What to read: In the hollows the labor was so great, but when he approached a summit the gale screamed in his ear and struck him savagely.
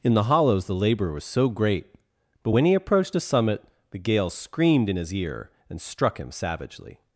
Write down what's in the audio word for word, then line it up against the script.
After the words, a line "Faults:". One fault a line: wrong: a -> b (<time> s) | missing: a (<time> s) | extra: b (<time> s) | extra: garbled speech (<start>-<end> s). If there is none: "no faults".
In the hollows the labor was so great, but when he approached a summit the gale screamed in his ear and struck him savagely.
Faults:
no faults